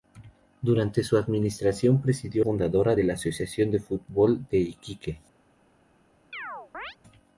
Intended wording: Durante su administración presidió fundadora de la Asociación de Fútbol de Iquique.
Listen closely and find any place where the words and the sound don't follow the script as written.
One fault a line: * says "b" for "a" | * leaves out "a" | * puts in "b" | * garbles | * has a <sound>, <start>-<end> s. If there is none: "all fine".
* has a chirp, 6.3-7.0 s